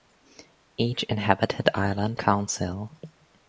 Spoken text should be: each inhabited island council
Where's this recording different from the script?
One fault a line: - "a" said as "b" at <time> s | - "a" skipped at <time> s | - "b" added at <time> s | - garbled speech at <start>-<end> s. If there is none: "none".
none